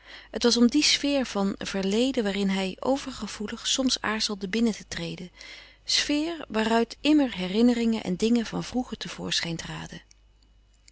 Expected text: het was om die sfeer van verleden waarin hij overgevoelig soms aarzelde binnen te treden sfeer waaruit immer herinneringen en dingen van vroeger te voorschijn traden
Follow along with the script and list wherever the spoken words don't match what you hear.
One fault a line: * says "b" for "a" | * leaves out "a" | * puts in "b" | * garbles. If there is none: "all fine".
all fine